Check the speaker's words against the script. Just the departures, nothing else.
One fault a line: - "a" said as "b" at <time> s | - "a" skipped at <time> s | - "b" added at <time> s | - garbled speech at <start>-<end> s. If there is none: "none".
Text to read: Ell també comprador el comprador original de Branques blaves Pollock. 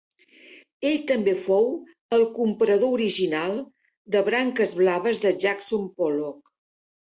- "comprador" said as "fou" at 1.4 s
- "de Jackson" added at 5.3 s